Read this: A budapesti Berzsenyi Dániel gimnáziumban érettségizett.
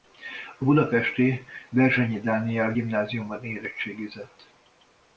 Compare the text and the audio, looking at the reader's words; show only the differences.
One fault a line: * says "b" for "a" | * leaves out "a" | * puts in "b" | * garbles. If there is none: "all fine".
all fine